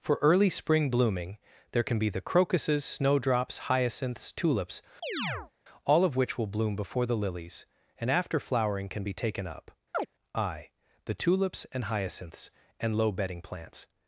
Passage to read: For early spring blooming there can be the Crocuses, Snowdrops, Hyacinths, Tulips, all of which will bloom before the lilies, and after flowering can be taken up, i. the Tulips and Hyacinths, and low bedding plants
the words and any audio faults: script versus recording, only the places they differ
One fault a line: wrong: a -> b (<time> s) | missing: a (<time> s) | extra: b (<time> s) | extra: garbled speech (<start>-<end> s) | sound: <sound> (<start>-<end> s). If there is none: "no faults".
sound: chirp (5.0-5.5 s)
sound: chirp (9.9-10.1 s)